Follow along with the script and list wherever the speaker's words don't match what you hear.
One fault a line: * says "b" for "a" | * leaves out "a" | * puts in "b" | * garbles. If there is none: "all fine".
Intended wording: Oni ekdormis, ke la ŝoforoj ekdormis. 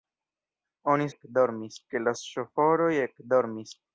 all fine